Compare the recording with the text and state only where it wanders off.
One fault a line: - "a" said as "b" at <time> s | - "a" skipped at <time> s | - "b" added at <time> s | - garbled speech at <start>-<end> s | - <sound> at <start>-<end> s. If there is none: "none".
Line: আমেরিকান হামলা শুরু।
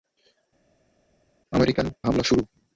none